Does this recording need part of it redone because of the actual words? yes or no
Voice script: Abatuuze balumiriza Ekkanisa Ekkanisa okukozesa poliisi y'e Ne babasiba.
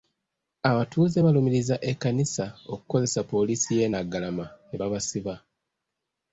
yes